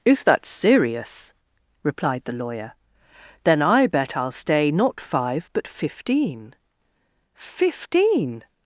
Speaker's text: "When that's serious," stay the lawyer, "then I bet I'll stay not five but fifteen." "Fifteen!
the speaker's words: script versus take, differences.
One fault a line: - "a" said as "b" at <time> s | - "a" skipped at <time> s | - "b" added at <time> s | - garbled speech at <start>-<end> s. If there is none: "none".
- "When" said as "If" at 0.0 s
- "stay" said as "replied" at 1.8 s